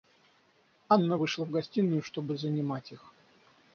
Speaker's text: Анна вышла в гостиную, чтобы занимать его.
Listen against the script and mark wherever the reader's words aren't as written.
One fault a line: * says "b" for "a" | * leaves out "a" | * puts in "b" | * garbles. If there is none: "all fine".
* says "их" for "его"